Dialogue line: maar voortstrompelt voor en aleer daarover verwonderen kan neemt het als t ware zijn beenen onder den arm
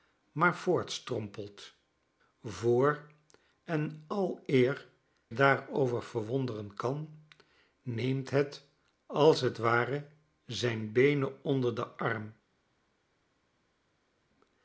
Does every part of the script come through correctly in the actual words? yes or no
yes